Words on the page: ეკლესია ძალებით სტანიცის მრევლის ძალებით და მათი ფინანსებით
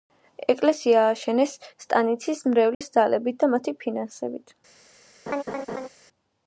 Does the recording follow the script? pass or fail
fail